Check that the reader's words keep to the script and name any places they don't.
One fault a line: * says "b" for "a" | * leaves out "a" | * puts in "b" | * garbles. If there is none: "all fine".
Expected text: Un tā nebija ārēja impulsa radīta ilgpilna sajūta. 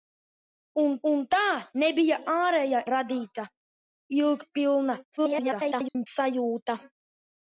* puts in "un"
* leaves out "impulsa"
* garbles